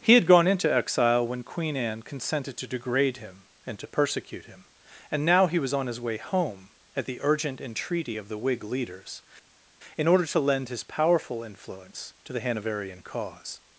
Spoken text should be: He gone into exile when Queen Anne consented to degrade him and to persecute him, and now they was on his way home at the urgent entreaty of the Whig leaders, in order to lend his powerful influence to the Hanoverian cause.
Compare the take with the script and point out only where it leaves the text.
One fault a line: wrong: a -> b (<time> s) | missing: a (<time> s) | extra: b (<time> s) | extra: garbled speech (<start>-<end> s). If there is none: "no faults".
extra: had (0.1 s)
wrong: they -> he (5.5 s)